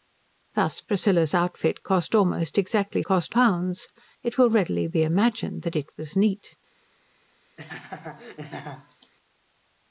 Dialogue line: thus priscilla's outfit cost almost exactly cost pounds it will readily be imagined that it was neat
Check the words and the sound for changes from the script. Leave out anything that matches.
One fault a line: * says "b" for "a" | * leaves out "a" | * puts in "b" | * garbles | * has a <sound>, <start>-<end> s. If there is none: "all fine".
* has a laugh, 7.6-9.1 s